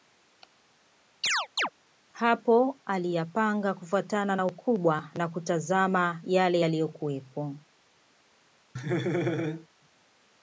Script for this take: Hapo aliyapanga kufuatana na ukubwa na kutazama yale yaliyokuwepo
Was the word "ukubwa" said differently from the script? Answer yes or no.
no